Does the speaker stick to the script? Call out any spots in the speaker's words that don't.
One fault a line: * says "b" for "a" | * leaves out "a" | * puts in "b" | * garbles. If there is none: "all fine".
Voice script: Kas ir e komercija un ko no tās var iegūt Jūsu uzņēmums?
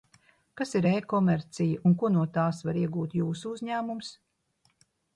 all fine